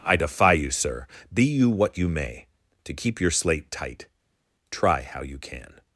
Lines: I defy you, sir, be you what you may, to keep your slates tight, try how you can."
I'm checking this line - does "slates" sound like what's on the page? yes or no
no